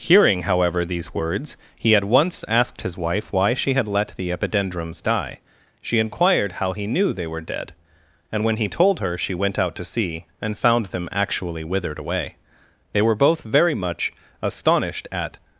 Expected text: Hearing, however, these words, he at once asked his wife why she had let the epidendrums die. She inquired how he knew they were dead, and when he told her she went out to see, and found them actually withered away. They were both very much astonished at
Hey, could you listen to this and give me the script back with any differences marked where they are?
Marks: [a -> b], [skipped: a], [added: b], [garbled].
Hearing, however, these words, he at once asked his wife why she had let the epidendrums die. She inquired how he knew they were dead, and when he told her she went out to see, and found them actually withered away. They were both very much astonished at